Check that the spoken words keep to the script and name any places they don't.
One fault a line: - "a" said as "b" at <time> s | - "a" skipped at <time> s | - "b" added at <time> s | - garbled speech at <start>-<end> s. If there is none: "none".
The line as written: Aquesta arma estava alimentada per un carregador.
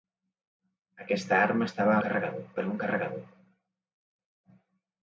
- "alimentada" said as "carregador" at 2.1 s